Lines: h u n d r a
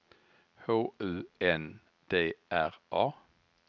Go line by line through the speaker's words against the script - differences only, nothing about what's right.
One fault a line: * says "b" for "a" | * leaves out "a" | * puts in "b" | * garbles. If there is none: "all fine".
all fine